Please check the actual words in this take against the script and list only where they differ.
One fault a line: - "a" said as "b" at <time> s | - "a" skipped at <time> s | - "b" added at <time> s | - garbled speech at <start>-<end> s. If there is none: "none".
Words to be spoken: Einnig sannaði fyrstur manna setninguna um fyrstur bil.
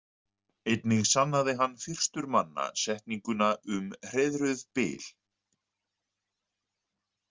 - "hann" added at 1.6 s
- "fyrstur" said as "hreiðruð" at 4.1 s